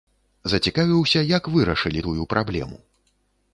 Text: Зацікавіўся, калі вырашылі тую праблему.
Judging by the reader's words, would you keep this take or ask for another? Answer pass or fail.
fail